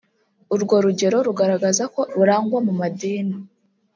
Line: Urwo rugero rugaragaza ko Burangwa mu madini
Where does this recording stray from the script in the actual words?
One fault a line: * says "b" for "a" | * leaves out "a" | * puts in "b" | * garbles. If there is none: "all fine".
all fine